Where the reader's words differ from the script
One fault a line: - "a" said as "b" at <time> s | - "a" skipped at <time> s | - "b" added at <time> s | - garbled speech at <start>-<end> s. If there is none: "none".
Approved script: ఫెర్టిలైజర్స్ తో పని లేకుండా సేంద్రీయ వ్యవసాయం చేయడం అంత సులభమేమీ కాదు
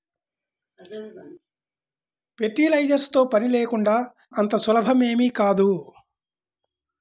- "సేంద్రీయ వ్యవసాయం చేయడం" skipped at 4.0 s